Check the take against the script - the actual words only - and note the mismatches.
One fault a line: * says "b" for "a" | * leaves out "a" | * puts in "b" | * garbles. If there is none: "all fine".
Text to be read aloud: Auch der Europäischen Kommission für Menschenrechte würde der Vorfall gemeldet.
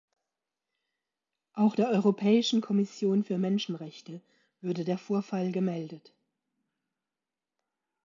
all fine